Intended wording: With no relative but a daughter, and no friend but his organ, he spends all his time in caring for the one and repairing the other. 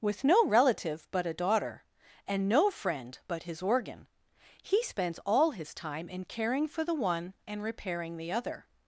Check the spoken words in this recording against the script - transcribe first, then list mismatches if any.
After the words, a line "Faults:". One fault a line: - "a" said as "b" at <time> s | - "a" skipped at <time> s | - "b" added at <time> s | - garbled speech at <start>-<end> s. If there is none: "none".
With no relative but a daughter, and no friend but his organ, he spends all his time in caring for the one and repairing the other.
Faults:
none